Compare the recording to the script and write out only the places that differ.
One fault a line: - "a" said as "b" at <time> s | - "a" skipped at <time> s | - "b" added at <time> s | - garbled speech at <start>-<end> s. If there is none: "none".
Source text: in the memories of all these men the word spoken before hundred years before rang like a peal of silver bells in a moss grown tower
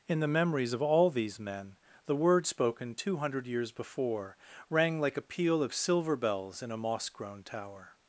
- "before" said as "two" at 2.9 s